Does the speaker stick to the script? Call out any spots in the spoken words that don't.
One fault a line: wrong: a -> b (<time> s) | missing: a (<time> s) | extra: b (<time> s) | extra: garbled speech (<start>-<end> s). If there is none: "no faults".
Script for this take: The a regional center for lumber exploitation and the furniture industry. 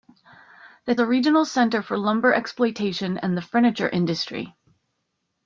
no faults